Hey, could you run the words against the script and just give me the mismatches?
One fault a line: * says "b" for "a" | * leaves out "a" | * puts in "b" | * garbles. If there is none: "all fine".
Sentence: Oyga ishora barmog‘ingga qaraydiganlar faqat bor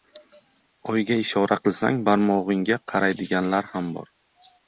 * puts in "qilsang"
* says "ham" for "faqat"